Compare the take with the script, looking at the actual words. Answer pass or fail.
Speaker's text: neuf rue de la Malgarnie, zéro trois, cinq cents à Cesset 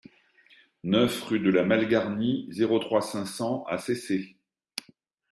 pass